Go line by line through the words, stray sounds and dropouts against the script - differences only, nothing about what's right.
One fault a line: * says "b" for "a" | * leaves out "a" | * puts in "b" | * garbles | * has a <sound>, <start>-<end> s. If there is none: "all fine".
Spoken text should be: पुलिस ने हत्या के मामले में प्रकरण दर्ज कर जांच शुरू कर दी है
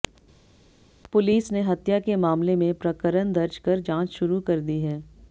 all fine